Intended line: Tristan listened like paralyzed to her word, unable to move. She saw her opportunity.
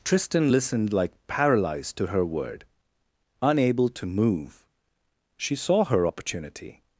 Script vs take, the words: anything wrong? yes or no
no